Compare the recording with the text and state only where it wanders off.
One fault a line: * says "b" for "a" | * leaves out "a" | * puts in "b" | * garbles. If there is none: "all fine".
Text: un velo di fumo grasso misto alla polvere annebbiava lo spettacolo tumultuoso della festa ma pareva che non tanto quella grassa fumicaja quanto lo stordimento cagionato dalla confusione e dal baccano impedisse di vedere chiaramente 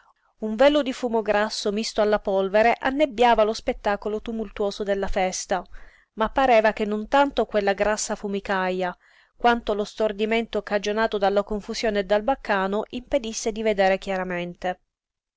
all fine